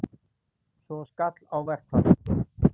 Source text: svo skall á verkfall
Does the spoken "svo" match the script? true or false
true